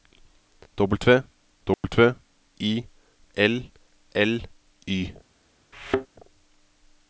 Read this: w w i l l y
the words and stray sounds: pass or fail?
fail